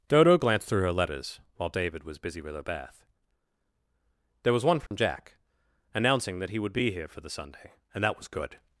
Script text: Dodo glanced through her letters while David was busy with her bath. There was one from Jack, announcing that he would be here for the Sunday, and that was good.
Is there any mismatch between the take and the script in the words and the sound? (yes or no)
yes